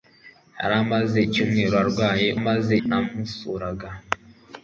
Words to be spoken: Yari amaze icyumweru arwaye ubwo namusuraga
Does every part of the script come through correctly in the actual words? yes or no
no